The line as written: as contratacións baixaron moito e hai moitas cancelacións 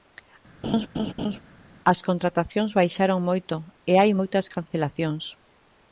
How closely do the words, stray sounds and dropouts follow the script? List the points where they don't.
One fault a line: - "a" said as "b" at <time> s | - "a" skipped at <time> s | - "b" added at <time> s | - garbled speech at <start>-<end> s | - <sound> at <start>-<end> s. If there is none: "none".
- laugh at 0.6-1.4 s